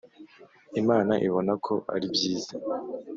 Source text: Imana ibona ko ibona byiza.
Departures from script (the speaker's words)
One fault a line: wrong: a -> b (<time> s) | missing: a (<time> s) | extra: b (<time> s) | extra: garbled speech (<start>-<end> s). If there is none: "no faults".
wrong: ibona -> ari (1.9 s)